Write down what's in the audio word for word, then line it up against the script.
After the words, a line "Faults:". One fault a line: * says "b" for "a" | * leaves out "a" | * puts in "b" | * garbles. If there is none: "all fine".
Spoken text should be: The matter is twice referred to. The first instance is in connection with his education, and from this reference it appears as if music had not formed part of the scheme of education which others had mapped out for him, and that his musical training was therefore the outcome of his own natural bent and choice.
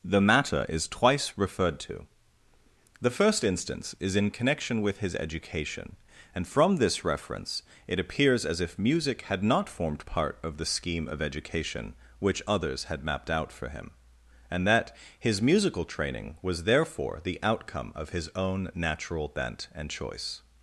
The matter is twice referred to. The first instance is in connection with his education, and from this reference it appears as if music had not formed part of the scheme of education which others had mapped out for him, and that his musical training was therefore the outcome of his own natural bent and choice.
Faults:
all fine